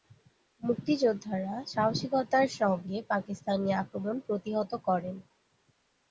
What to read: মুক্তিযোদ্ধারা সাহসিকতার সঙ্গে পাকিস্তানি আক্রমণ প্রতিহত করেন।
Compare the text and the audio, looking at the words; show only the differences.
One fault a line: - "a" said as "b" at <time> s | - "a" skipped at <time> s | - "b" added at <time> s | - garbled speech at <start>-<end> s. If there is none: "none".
none